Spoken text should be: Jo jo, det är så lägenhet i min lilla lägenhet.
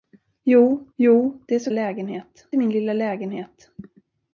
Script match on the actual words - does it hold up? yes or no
yes